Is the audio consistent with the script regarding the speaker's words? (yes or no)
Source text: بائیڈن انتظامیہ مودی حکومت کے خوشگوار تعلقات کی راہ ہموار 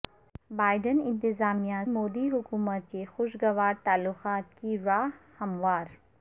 yes